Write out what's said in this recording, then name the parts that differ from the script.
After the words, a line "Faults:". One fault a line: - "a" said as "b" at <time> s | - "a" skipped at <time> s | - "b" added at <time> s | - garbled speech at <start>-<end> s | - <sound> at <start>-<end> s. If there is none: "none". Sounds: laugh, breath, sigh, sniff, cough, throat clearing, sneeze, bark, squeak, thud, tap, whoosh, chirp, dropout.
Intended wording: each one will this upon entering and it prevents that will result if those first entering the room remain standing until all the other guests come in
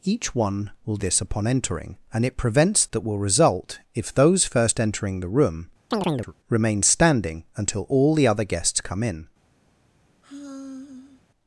each one will this upon entering and it prevents that will result if those first entering the room remain standing until all the other guests come in
Faults:
- chirp at 5.9-6.3 s
- sigh at 10.2-11.2 s